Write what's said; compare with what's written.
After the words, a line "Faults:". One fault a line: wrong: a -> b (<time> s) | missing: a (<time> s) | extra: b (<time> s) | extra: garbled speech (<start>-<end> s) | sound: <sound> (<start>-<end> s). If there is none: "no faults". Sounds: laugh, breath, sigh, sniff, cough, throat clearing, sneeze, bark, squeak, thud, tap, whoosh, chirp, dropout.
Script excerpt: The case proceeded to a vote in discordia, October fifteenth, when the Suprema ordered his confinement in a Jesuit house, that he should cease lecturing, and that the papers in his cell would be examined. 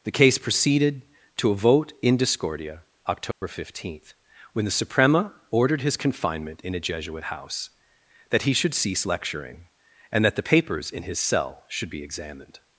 The case proceeded to a vote in discordia, October fifteenth, when the Suprema ordered his confinement in a Jesuit house, that he should cease lecturing, and that the papers in his cell should be examined.
Faults:
sound: dropout (3.3-3.4 s)
wrong: would -> should (11.7 s)